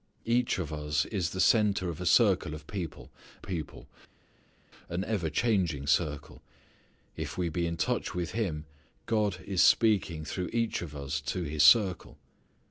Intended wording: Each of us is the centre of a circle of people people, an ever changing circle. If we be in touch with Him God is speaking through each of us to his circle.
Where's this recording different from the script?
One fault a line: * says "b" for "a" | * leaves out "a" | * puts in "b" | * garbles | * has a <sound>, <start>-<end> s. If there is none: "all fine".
all fine